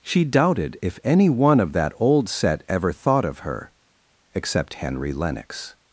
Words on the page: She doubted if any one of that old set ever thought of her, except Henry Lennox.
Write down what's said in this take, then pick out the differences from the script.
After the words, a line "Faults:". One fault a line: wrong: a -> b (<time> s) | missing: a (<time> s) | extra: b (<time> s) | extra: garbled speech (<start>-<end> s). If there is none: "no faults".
She doubted if any one of that old set ever thought of her, except Henry Lennox.
Faults:
no faults